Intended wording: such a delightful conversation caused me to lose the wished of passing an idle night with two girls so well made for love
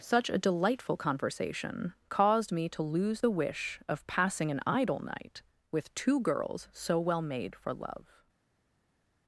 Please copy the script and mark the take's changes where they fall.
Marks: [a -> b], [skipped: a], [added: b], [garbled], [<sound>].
such a delightful conversation caused me to lose the [wished -> wish] of passing an idle night with two girls so well made for love